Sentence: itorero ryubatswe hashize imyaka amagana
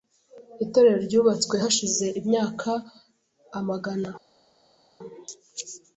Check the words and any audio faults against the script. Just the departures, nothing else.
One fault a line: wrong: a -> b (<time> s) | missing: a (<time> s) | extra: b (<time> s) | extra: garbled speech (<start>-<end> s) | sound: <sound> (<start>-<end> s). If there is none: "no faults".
no faults